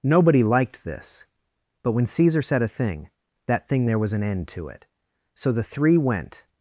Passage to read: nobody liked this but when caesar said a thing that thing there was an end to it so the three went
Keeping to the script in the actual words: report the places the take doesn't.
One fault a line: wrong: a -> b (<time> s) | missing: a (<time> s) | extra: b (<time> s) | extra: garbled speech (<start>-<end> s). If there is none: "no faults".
no faults